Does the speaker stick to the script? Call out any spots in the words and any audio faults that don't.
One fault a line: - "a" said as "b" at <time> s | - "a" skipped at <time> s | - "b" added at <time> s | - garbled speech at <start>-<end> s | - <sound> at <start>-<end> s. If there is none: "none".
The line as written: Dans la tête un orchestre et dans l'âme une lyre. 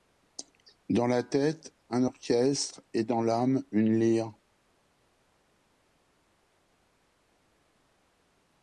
none